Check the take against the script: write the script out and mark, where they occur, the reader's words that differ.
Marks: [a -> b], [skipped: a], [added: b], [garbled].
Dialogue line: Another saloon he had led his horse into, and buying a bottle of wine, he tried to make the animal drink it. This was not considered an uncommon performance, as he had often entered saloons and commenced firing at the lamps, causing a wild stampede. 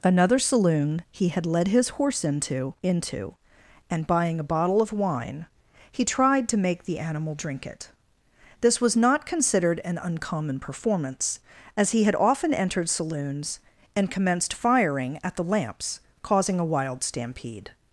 Another saloon he had led his horse into, [added: into] and buying a bottle of wine, he tried to make the animal drink it. This was not considered an uncommon performance, as he had often entered saloons and commenced firing at the lamps, causing a wild stampede.